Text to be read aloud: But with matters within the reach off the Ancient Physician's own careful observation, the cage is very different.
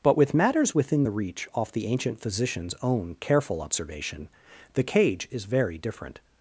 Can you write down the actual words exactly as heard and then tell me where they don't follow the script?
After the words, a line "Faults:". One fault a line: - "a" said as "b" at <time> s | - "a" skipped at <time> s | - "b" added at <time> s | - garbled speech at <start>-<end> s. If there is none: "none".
But with matters within the reach off the Ancient Physician's own careful observation, the cage is very different.
Faults:
none